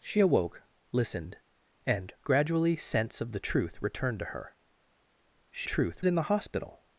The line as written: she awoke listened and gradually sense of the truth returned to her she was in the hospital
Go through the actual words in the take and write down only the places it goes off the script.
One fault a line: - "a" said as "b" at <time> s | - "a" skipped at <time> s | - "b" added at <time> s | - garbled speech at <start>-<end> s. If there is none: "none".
- "was" said as "truth" at 5.6 s